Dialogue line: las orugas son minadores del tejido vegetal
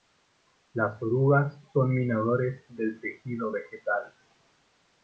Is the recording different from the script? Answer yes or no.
no